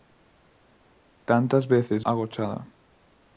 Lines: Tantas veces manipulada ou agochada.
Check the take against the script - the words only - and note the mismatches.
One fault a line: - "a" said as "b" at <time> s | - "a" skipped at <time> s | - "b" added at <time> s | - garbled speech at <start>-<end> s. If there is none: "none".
- "manipulada ou" skipped at 2.0 s